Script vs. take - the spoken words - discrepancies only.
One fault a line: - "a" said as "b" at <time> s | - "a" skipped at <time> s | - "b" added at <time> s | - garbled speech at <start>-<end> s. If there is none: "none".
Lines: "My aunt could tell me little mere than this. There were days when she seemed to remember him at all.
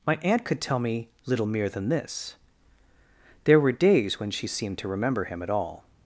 none